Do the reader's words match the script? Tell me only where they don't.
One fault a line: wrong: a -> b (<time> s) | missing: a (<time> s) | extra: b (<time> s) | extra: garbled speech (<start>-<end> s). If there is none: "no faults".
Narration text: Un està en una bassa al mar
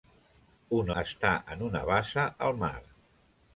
no faults